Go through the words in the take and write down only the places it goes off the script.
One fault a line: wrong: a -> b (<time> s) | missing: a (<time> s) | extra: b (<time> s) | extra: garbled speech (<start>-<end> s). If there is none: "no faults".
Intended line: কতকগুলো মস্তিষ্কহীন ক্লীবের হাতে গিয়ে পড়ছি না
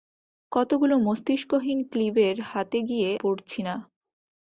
no faults